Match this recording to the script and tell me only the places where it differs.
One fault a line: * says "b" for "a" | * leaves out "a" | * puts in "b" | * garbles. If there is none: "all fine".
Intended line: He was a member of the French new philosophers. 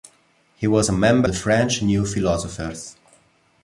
* leaves out "of"